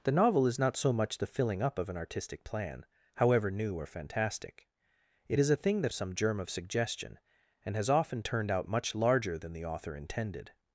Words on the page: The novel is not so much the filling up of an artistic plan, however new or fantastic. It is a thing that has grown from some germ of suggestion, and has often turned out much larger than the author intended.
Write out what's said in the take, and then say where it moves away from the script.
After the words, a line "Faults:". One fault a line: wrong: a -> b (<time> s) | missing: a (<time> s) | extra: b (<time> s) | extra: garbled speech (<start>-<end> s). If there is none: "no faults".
The novel is not so much the filling up of an artistic plan, however new or fantastic. It is a thing that some germ of suggestion, and has often turned out much larger than the author intended.
Faults:
missing: has grown from (5.9 s)